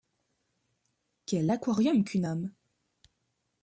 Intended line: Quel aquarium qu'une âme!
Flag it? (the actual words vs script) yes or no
no